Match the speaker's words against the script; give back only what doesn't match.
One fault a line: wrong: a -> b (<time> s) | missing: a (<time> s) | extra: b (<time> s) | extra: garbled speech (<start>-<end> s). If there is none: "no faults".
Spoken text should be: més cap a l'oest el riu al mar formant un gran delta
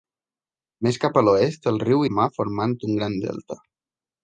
no faults